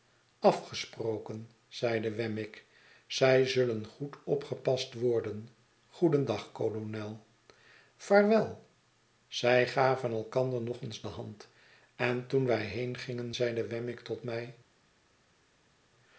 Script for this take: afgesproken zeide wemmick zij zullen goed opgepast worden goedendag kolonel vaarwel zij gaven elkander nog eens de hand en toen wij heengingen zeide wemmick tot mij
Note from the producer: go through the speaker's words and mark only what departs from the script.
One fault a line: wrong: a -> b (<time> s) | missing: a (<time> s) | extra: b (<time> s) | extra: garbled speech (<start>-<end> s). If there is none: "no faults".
no faults